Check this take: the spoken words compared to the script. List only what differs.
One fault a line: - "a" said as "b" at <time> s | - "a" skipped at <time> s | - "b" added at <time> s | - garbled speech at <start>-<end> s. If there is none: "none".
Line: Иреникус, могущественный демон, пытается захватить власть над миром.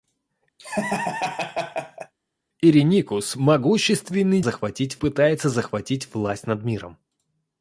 - "демон" said as "захватить" at 4.4 s